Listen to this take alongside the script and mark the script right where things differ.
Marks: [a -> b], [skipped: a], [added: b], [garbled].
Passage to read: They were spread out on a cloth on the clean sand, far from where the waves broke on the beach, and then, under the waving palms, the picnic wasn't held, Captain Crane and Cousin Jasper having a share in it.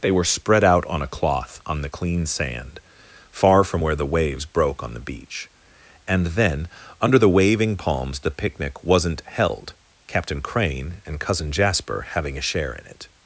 They were spread out on a cloth on the clean sand, far from where the waves broke on the beach, and then, under the waving palms, the picnic wasn't held, Captain Crane and Cousin Jasper having a share in it.